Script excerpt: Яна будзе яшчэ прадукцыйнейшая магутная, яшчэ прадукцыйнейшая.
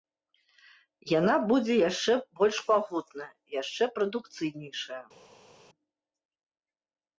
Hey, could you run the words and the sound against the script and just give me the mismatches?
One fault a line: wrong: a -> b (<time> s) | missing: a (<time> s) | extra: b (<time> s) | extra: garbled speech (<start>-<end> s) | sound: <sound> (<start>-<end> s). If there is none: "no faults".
wrong: прадукцыйнейшая -> больш (2.4 s)